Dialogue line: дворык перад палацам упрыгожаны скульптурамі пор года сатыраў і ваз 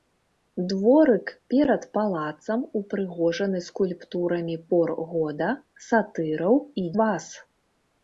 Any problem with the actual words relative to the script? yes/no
no